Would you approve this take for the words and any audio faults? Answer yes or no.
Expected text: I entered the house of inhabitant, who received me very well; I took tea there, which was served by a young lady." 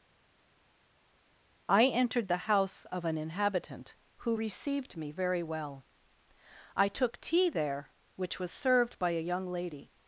no